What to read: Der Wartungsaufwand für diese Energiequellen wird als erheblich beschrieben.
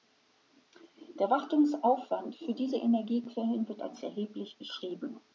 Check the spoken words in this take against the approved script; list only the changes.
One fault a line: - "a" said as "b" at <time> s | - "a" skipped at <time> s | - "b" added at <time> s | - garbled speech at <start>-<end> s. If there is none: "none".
none